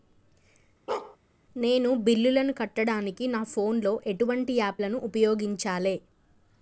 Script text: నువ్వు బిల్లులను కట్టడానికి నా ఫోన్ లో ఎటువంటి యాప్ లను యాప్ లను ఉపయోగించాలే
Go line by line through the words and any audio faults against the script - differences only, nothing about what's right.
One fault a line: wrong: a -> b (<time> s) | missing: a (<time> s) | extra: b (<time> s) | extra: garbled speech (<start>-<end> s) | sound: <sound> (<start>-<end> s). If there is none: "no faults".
sound: bark (0.9-1.2 s)
wrong: నువ్వు -> నేను (1.6 s)
missing: యాప్ లను (5.0 s)